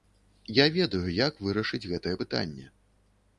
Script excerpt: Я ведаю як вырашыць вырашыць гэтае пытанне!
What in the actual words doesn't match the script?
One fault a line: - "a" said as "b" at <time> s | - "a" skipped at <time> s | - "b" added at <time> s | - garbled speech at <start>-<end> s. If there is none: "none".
- "вырашыць" skipped at 1.8 s